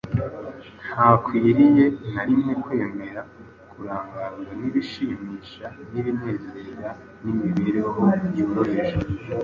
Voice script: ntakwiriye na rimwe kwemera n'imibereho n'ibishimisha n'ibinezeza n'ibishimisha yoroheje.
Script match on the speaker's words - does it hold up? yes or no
no